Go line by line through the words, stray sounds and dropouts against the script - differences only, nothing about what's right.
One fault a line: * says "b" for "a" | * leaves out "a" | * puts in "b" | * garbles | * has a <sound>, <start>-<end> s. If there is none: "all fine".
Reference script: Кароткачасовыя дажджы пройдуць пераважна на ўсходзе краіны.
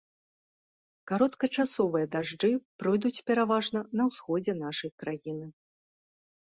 * puts in "нашай"